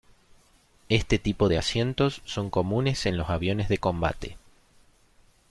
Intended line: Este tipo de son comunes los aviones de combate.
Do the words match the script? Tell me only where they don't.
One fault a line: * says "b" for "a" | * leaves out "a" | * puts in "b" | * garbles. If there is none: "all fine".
* puts in "asientos"
* puts in "en"